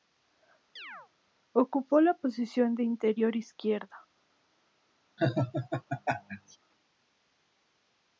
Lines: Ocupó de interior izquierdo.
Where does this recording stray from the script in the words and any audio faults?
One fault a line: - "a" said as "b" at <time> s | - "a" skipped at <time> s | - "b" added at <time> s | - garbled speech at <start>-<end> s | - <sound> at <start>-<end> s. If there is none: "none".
- chirp at 0.8-1.1 s
- "la posición" added at 2.0 s
- laugh at 5.2-6.6 s